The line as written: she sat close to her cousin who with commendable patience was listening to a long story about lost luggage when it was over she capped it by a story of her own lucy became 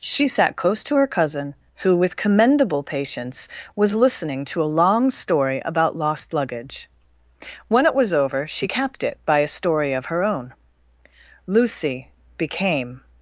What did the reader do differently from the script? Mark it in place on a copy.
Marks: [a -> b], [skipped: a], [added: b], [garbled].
she sat close to her cousin who with commendable patience was listening to a long story about lost luggage when it was over she capped it by a story of her own lucy became